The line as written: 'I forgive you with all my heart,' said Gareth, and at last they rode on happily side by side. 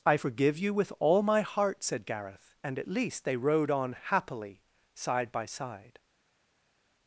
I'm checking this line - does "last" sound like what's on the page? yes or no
no